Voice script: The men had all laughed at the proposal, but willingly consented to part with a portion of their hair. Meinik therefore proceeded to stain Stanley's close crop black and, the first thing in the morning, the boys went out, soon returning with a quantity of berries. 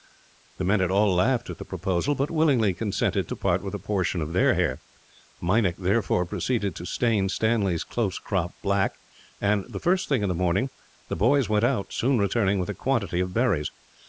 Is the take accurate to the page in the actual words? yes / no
yes